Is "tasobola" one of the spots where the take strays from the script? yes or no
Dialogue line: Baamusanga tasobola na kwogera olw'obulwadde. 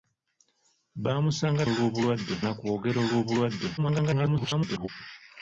yes